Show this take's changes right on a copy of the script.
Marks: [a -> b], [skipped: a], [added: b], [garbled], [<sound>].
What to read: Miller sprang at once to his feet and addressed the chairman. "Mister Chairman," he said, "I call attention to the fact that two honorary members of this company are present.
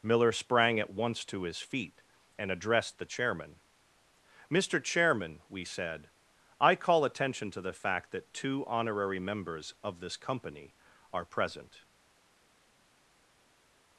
Miller sprang at once to his feet and addressed the chairman. "Mister Chairman," [he -> we] said, "I call attention to the fact that two honorary members of this company are present.